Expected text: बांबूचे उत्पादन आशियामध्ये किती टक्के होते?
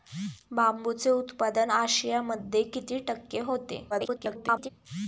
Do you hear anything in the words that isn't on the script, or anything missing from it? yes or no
yes